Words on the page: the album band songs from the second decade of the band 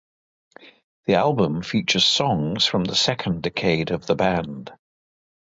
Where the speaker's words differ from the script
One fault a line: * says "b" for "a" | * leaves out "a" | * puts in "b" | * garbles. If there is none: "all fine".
* says "features" for "band"